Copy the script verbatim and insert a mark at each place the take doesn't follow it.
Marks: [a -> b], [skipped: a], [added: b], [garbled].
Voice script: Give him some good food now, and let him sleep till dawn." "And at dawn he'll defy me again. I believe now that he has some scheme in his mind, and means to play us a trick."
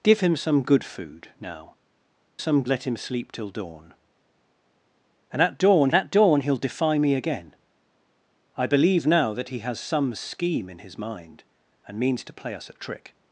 Give him some good food now, [and -> some] let him sleep till dawn." "And at dawn [added: at dawn] he'll defy me again. I believe now that he has some scheme in his mind, and means to play us a trick."